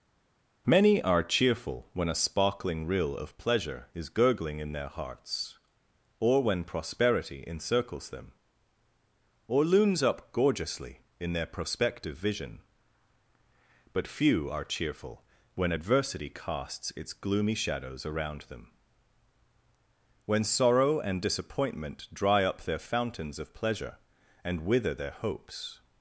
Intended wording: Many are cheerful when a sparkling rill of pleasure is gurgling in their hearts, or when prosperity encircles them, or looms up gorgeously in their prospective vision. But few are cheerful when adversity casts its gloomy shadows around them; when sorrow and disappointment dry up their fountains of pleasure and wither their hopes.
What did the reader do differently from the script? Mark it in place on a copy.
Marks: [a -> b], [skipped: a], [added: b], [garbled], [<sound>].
Many are cheerful when a sparkling rill of pleasure is gurgling in their hearts, or when prosperity encircles them, or looms up gorgeously in their prospective vision. But few are cheerful when adversity casts its gloomy shadows around them; when sorrow and disappointment dry up their fountains of pleasure and wither their hopes.